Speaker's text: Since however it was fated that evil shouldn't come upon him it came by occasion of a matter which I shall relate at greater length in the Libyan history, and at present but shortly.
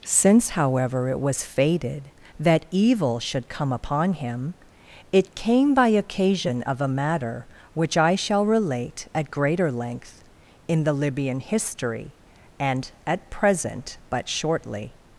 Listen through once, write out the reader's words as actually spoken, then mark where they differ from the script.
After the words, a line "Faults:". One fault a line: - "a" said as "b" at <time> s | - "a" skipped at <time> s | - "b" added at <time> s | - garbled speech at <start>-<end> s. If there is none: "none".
Since however it was fated that evil should come upon him it came by occasion of a matter which I shall relate at greater length in the Libyan history, and at present but shortly.
Faults:
- "shouldn't" said as "should" at 3.2 s